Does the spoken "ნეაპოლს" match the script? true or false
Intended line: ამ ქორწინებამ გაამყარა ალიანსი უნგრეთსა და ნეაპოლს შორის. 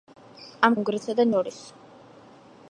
false